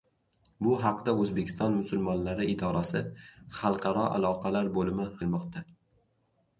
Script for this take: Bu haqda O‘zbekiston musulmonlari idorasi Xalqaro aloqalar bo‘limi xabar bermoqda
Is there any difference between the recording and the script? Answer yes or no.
yes